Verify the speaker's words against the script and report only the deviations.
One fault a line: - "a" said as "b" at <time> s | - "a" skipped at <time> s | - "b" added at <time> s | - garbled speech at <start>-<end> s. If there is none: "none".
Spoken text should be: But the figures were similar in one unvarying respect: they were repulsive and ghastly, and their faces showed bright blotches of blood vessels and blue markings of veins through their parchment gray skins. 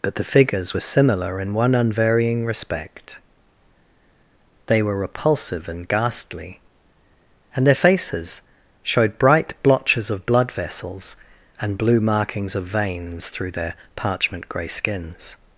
none